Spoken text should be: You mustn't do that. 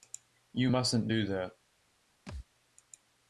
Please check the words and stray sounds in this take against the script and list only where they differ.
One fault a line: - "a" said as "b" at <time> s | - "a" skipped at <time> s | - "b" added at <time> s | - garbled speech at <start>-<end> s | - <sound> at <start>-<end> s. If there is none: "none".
- thud at 2.3-2.5 s